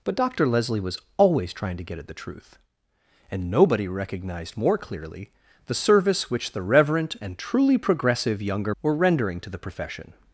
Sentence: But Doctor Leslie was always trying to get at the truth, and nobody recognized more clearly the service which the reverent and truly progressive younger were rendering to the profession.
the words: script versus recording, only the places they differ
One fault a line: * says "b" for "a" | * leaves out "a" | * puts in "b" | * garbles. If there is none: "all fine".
all fine